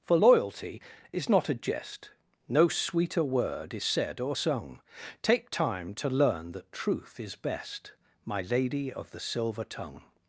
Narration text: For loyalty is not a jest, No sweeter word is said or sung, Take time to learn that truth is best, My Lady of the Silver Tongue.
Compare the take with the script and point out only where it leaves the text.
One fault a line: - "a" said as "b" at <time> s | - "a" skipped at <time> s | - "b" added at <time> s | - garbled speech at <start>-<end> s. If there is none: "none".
none